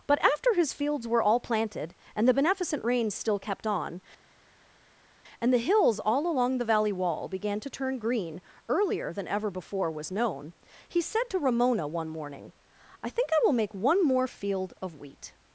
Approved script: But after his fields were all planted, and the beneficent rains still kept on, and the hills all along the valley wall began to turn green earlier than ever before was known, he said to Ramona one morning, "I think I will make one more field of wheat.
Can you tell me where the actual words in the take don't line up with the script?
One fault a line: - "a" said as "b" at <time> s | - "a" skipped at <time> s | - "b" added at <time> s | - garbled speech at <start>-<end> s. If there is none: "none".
none